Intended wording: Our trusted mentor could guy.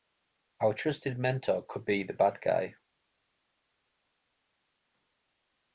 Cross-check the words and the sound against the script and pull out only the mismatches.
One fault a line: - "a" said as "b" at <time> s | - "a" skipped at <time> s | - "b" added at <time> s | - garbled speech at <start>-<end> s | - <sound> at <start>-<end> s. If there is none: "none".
- "be the bad" added at 1.8 s